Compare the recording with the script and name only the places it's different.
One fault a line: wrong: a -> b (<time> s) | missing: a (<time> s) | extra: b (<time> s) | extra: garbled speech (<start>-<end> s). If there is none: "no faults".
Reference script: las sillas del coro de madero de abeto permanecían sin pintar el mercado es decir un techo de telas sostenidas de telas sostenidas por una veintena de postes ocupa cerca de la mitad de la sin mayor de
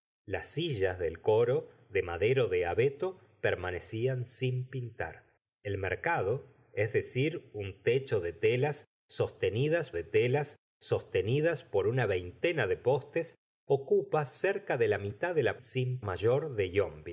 no faults